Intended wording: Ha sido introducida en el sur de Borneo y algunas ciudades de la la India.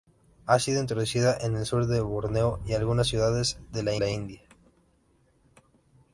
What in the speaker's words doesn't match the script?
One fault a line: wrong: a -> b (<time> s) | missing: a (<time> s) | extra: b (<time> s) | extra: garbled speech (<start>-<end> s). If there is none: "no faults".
no faults